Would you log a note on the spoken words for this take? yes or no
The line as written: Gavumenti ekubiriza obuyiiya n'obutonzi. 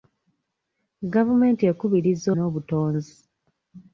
yes